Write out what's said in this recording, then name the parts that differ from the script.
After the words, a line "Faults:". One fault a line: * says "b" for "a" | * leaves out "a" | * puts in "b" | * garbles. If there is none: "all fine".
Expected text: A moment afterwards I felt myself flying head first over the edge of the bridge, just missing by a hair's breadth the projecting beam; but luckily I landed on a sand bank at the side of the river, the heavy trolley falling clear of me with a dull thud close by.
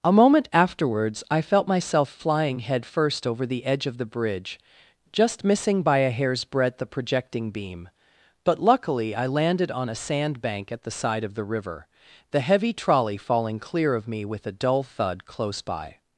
A moment afterwards I felt myself flying head first over the edge of the bridge, just missing by a hair's breadth the projecting beam; but luckily I landed on a sand bank at the side of the river, the heavy trolley falling clear of me with a dull thud close by.
Faults:
all fine